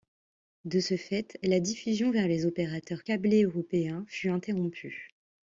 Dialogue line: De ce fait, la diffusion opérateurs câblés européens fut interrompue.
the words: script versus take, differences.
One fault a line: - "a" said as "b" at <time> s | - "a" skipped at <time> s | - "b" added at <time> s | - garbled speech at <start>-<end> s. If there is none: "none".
- "vers les" added at 2.1 s